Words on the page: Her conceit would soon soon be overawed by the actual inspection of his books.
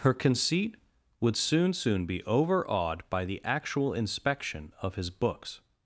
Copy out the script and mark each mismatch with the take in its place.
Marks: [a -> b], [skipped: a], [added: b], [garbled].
Her conceit would soon soon be overawed by the actual inspection of his books.